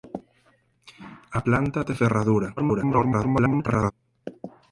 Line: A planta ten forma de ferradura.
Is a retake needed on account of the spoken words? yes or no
yes